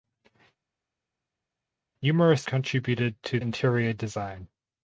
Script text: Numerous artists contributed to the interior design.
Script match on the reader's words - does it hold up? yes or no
no